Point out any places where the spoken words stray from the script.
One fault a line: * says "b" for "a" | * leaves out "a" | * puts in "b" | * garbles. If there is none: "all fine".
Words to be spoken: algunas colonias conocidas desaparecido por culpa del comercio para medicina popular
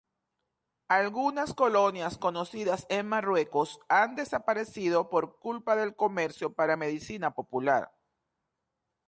* puts in "en marruecos han"